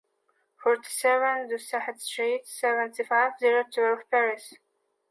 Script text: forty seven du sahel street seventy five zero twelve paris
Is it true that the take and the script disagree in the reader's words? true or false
false